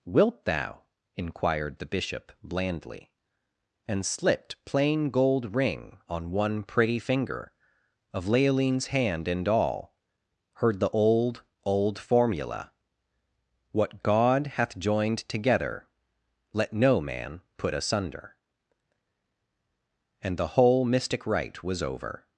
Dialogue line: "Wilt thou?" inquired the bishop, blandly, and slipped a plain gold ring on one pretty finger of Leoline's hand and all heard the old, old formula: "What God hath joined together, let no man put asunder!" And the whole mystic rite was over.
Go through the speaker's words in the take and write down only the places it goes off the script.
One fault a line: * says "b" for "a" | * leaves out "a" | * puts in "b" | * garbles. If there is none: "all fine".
* leaves out "a"